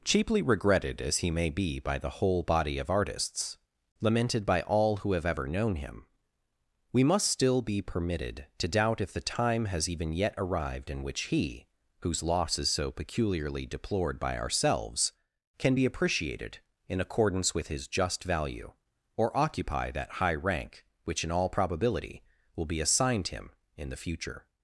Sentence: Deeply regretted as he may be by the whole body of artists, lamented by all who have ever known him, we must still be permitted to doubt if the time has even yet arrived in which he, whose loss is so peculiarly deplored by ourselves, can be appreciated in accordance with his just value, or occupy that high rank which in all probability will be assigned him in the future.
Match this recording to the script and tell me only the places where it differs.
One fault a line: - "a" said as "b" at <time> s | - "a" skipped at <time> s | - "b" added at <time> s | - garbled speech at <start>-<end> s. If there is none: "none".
- "Deeply" said as "Cheaply" at 0.0 s